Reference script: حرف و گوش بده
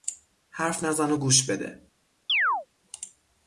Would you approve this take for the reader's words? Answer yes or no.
no